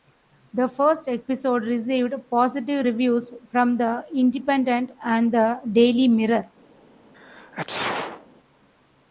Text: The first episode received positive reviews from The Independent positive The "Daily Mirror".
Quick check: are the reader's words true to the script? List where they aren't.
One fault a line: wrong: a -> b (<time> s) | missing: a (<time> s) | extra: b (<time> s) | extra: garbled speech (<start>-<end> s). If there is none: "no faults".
wrong: positive -> and (5.0 s)